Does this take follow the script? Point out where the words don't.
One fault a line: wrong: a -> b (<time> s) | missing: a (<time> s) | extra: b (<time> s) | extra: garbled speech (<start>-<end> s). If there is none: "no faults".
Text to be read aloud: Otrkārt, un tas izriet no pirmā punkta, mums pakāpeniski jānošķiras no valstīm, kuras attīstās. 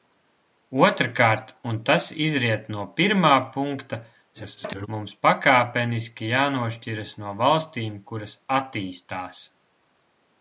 extra: garbled speech (4.3-4.9 s)